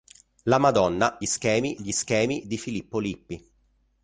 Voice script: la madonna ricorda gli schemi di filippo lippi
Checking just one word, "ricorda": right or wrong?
wrong